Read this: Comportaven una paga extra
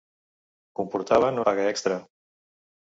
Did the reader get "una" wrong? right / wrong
wrong